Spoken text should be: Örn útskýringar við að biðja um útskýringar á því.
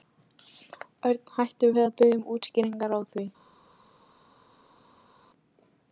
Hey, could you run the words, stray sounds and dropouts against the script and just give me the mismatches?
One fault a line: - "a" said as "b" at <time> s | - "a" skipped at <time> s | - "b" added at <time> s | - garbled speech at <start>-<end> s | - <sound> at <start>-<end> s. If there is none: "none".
- "útskýringar" said as "hætti" at 1.4 s